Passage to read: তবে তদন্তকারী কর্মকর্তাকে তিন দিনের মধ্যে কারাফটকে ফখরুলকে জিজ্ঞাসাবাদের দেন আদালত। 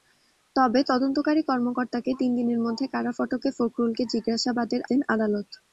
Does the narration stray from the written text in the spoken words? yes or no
no